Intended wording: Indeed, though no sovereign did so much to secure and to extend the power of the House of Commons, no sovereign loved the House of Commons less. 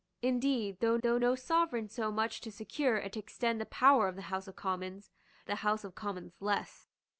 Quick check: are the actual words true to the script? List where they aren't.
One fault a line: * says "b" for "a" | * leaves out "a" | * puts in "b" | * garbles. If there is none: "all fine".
* puts in "though"
* leaves out "did"
* leaves out "no sovereign loved"